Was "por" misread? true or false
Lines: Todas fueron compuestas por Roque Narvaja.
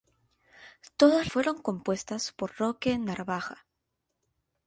false